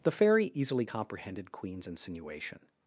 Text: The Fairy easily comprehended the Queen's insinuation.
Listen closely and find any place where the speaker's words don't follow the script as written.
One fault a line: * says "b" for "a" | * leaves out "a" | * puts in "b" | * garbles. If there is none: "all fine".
* leaves out "the"